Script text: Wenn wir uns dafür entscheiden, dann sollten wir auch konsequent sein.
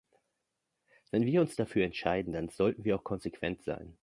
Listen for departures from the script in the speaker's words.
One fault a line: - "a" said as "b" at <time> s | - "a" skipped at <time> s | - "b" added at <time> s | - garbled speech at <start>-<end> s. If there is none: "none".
none